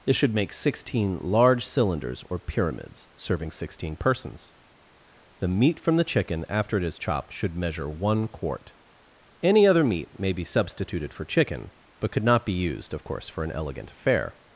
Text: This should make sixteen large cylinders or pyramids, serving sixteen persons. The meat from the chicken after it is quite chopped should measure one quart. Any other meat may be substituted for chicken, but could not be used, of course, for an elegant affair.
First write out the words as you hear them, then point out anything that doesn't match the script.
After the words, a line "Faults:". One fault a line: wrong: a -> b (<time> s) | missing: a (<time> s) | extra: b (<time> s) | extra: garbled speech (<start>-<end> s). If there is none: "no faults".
This should make sixteen large cylinders or pyramids, serving sixteen persons. The meat from the chicken after it is chopped should measure one quart. Any other meat may be substituted for chicken, but could not be used, of course, for an elegant affair.
Faults:
missing: quite (7.0 s)